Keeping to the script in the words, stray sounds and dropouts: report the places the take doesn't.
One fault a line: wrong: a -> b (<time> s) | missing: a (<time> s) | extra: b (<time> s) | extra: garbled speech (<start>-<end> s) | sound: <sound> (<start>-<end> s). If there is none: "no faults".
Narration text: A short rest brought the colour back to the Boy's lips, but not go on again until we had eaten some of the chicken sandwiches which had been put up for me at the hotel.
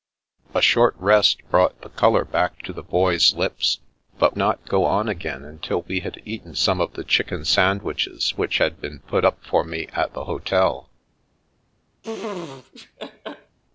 sound: laugh (12.0-13.6 s)